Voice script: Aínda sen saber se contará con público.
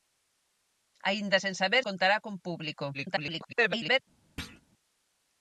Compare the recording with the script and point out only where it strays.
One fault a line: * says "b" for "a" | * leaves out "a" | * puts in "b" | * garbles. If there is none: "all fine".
* leaves out "se"
* garbles